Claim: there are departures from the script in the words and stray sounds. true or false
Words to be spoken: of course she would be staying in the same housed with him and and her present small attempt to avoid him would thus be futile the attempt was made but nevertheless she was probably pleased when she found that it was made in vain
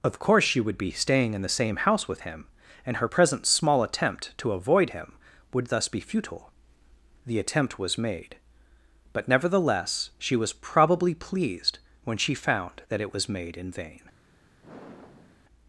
true